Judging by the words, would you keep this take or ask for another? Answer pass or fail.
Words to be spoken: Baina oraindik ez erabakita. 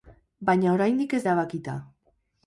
pass